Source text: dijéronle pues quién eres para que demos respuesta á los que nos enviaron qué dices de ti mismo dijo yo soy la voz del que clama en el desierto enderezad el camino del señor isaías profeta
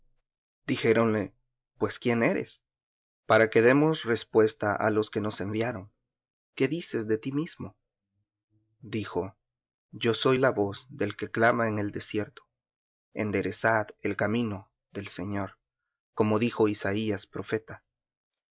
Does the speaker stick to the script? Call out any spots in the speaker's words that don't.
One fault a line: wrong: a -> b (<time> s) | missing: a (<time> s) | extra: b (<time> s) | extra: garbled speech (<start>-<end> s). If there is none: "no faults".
extra: como dijo (16.1 s)